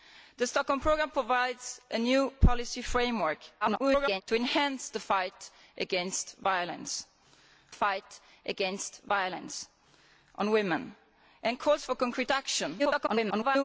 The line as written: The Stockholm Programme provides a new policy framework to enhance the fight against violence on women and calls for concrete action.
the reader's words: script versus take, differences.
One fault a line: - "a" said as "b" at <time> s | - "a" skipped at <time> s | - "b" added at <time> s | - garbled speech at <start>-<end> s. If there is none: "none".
- garbled speech at 3.6-4.2 s
- "fight against violence" added at 7.7 s
- garbled speech at 12.8-13.6 s